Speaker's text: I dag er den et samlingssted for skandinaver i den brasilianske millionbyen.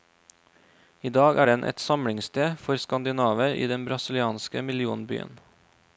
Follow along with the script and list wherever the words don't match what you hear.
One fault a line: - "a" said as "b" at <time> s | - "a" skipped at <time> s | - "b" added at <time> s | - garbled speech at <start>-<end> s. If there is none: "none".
none